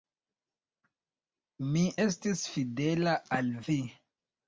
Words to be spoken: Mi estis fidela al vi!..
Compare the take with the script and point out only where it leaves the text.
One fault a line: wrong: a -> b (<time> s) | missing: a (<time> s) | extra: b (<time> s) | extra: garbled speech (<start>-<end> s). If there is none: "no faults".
no faults